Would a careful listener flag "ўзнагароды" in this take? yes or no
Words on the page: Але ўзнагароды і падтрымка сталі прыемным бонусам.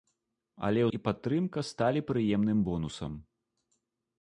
yes